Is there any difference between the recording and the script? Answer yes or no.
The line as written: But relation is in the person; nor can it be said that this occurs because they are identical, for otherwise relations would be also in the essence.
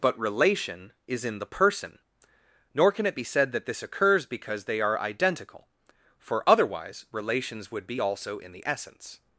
no